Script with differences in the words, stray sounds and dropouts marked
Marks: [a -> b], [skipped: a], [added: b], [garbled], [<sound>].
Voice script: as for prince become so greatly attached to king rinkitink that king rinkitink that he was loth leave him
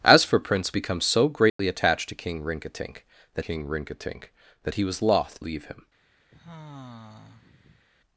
as for prince become so greatly [dropout] attached to king rinkitink that king rinkitink that he was loth leave him [sigh]